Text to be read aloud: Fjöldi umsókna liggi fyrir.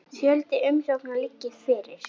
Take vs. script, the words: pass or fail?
pass